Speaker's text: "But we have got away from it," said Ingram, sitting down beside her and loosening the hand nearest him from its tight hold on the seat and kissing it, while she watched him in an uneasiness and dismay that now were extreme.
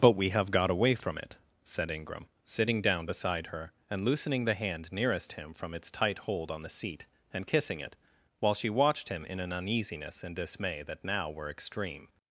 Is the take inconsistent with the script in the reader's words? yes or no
no